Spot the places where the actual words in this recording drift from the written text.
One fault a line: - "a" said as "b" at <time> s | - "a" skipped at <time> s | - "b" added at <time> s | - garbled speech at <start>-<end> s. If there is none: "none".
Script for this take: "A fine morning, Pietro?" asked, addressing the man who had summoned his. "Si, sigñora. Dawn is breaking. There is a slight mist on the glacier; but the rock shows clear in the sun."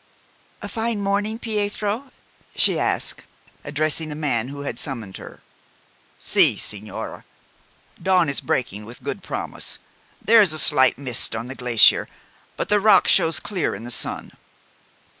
- "she" added at 2.5 s
- "his" said as "her" at 5.2 s
- "with good promise" added at 8.8 s